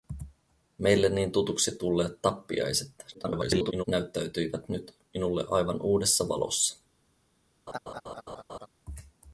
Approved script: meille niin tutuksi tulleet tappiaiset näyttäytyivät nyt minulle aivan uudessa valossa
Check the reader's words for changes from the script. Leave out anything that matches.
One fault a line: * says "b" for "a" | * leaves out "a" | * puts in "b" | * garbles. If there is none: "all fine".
* garbles